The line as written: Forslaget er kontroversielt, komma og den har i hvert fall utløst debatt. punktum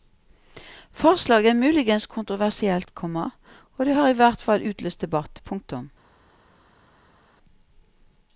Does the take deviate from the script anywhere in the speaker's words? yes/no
yes